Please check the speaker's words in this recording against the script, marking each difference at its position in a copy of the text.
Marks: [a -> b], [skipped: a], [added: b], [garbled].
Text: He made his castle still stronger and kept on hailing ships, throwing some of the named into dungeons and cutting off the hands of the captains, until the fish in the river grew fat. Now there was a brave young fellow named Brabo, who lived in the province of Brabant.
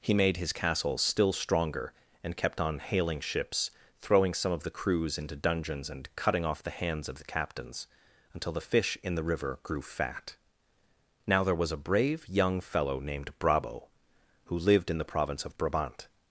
He made his castle still stronger and kept on hailing ships, throwing some of the [named -> crews] into dungeons and cutting off the hands of the captains, until the fish in the river grew fat. Now there was a brave young fellow named Brabo, who lived in the province of Brabant.